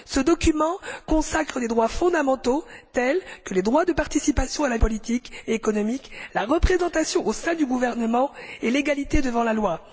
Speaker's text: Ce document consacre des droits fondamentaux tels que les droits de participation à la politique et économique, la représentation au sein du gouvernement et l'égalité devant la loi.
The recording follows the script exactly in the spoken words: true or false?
true